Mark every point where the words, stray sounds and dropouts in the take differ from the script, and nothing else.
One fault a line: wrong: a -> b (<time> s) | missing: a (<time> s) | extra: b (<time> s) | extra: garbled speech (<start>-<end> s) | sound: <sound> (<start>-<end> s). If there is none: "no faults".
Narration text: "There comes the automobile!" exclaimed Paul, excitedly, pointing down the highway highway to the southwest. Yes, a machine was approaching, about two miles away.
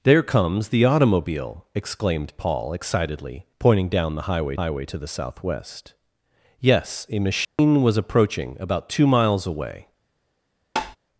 sound: dropout (7.4-7.6 s)
sound: tap (10.8-11.0 s)